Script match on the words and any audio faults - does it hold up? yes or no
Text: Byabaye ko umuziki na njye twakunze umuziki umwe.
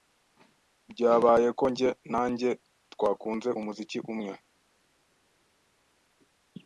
no